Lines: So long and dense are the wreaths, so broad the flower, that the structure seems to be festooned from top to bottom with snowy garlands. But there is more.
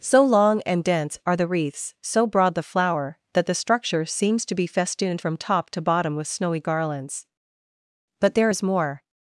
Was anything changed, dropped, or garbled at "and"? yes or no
no